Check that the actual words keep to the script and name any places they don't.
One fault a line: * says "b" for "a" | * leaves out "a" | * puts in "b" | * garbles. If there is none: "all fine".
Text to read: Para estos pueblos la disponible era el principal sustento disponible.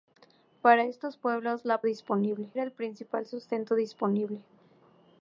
all fine